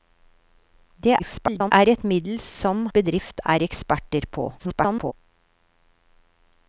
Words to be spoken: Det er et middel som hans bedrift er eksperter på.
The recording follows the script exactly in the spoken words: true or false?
false